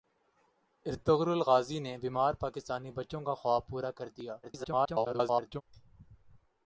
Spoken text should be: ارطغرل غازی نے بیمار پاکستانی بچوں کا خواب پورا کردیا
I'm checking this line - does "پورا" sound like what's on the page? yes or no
yes